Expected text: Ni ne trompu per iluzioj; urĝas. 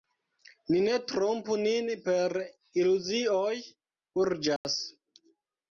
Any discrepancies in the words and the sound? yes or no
yes